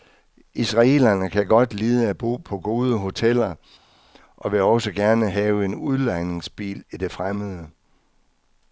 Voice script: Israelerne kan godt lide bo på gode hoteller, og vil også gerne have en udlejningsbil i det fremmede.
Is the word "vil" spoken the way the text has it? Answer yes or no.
yes